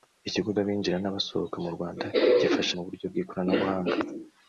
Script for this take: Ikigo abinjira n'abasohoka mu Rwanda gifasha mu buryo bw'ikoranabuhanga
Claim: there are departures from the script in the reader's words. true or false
false